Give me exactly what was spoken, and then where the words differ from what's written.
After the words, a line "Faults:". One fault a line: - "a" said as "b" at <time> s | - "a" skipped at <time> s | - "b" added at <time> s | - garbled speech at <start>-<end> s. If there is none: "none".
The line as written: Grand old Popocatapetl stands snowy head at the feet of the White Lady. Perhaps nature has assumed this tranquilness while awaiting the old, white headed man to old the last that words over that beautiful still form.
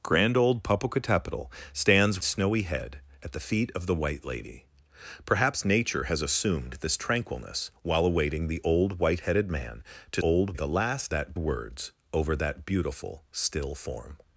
Grand old Popocatapetl stands snowy head at the feet of the White Lady. Perhaps nature has assumed this tranquilness while awaiting the old, white headed man to old the last that words over that beautiful still form.
Faults:
none